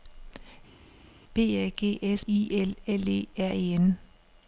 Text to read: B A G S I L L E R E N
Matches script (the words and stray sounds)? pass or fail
pass